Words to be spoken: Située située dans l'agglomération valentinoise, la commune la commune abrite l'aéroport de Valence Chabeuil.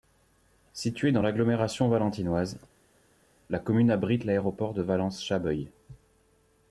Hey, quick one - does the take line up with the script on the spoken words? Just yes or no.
no